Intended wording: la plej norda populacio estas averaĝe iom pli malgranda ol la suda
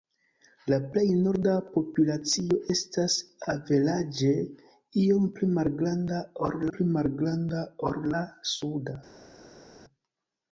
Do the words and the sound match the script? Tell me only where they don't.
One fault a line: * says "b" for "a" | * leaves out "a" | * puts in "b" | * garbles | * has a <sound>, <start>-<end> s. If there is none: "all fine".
* puts in "pli malgranda ol"